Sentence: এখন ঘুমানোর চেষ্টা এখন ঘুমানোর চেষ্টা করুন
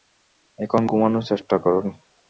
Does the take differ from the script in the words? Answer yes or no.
yes